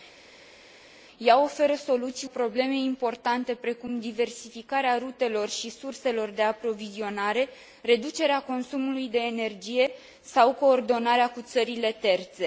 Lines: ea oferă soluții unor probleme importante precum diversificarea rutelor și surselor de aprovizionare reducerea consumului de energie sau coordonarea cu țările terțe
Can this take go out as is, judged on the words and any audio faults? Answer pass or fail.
fail